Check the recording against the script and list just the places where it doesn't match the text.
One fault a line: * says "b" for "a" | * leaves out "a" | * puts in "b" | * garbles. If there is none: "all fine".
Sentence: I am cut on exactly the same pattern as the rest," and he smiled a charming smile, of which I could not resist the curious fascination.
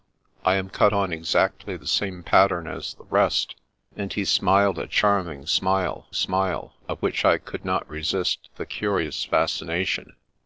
* puts in "smile"